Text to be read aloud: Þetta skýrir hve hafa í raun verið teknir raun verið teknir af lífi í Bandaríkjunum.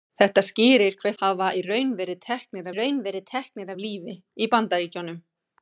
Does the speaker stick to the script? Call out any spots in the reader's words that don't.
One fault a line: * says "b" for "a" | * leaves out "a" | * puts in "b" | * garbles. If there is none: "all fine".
all fine